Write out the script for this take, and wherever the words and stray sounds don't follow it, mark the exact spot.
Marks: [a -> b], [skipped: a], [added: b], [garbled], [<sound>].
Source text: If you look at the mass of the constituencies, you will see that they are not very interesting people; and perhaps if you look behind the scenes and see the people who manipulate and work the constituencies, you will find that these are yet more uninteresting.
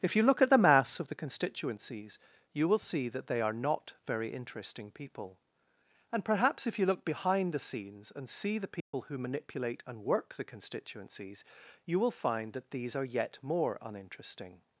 If you look at the mass of the constituencies, you will see that they are not very interesting people; and perhaps if you look behind the scenes and see the people [dropout] who manipulate and work the constituencies, you will find that these are yet more uninteresting.